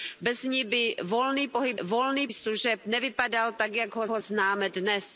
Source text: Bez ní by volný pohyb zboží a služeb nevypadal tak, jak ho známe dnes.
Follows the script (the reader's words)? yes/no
no